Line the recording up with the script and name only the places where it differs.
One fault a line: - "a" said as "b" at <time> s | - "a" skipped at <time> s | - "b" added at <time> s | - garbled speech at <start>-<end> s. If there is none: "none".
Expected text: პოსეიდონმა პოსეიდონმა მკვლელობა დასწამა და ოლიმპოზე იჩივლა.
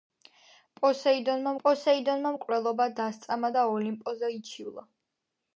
none